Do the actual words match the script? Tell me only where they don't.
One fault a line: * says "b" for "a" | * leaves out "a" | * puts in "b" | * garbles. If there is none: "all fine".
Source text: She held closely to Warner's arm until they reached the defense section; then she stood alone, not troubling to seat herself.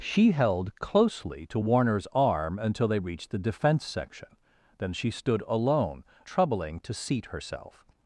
* leaves out "not"